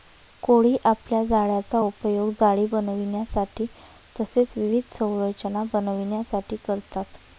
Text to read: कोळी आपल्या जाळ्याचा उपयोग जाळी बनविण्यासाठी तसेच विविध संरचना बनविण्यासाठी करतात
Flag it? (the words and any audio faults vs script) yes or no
no